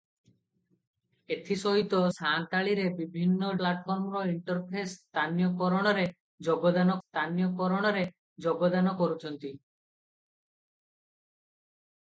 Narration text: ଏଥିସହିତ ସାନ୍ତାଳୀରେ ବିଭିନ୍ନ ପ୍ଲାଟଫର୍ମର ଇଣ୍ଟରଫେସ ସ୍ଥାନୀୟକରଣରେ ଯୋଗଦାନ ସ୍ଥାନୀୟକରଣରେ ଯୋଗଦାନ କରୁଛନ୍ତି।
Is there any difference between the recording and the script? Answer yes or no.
no